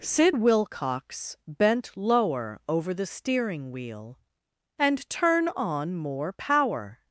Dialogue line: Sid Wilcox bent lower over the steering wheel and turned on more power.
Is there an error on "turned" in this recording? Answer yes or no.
yes